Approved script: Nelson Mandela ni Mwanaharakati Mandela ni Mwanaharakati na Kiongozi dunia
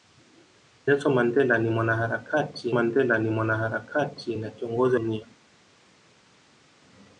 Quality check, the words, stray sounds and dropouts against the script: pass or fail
pass